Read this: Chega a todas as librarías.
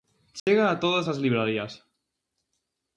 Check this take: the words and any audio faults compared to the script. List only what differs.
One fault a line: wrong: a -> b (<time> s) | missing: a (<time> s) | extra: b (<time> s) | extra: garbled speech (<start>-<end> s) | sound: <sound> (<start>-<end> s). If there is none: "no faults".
sound: dropout (0.4-0.5 s)